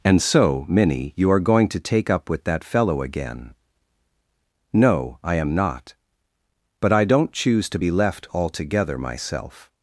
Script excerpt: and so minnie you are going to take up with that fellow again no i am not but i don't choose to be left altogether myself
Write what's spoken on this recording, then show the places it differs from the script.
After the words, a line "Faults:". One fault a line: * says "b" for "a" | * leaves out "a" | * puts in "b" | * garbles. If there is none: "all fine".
and so minnie you are going to take up with that fellow again no i am not but i don't choose to be left altogether myself
Faults:
all fine